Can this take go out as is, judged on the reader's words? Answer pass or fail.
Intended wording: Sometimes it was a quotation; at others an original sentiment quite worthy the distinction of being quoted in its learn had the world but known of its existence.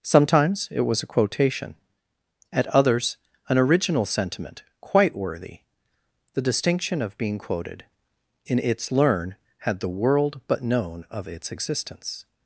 pass